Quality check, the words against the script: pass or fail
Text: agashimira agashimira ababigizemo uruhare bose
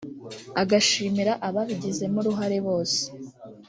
fail